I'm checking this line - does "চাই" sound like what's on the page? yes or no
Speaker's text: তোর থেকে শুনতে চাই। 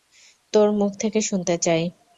yes